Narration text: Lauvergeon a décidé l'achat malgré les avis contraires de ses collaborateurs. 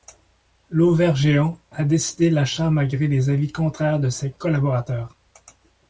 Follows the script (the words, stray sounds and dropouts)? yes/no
yes